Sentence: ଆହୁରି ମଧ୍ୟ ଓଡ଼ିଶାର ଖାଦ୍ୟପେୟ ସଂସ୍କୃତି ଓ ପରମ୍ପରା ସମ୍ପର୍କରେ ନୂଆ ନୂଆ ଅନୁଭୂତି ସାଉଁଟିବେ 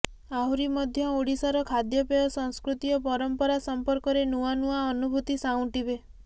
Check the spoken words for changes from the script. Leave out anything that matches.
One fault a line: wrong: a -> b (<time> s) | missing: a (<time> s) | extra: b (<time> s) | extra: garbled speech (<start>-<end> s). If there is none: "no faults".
no faults